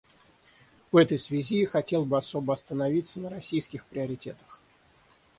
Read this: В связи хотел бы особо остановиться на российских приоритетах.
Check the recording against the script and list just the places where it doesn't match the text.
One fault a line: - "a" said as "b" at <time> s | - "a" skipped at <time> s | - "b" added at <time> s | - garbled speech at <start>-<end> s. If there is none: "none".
- "этой" added at 1.0 s